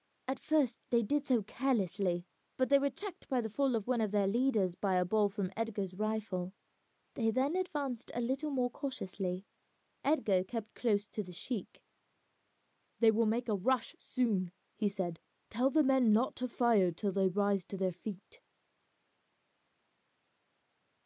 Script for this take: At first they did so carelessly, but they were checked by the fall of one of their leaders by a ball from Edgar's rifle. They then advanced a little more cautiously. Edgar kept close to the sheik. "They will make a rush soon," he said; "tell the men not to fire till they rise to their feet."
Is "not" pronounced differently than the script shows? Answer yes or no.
no